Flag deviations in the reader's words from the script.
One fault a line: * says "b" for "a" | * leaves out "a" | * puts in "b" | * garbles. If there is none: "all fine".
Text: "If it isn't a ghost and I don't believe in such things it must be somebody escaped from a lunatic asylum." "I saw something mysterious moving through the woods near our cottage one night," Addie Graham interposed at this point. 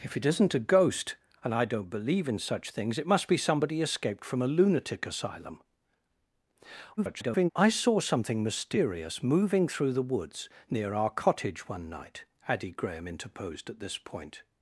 * garbles